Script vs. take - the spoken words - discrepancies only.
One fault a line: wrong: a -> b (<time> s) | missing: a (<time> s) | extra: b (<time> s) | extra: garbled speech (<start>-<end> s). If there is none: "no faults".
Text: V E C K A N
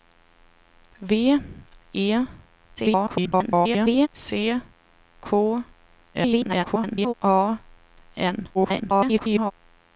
extra: garbled speech (2.8-4.1 s)
extra: garbled speech (6.1-7.1 s)
extra: garbled speech (8.5-9.5 s)